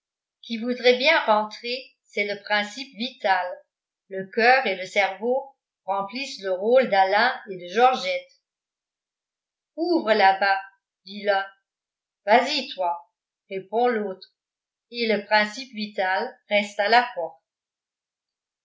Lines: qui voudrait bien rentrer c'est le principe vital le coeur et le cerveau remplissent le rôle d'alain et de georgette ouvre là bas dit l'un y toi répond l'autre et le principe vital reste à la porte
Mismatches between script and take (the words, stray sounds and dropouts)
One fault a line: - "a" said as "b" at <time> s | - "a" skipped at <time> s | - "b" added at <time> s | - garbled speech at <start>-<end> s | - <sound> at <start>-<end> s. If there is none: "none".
- "vas" added at 12.2 s